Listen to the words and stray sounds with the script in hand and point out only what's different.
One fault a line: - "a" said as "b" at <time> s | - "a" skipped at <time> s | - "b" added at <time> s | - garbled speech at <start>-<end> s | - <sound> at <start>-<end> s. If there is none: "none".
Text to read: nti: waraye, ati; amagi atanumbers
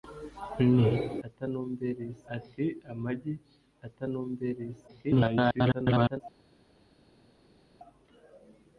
- "waraye" said as "atanumbers" at 1.3 s
- garbled speech at 4.9-6.2 s